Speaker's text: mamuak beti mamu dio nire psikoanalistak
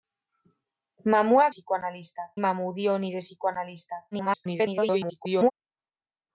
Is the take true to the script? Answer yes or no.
no